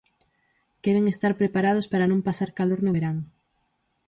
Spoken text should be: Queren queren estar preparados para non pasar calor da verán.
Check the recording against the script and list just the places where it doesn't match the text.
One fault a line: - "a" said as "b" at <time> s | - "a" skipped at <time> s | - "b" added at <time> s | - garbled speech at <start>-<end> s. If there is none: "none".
- "queren" skipped at 1.1 s
- "da" said as "no" at 2.8 s